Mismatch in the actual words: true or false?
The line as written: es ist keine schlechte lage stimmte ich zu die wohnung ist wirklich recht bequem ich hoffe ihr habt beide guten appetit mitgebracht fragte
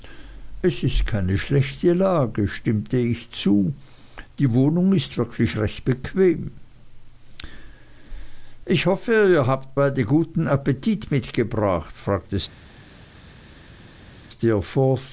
false